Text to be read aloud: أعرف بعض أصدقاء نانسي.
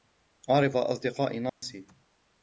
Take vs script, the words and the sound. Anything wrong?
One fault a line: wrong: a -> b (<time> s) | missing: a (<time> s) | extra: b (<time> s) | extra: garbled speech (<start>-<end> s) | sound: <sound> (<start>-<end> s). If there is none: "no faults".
missing: بعض (0.8 s)
sound: dropout (1.5-1.6 s)